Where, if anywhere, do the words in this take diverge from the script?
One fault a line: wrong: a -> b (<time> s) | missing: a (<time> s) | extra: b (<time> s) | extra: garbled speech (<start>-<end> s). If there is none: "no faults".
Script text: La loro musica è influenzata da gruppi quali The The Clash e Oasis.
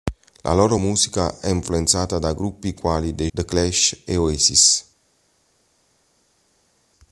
no faults